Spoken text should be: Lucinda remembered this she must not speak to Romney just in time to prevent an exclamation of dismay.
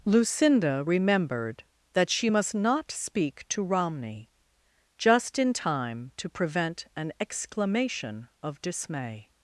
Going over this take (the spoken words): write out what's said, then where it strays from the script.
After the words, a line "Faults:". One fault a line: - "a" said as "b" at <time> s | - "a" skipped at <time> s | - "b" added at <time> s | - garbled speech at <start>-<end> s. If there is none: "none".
Lucinda remembered that she must not speak to Romney just in time to prevent an exclamation of dismay.
Faults:
- "this" said as "that" at 1.9 s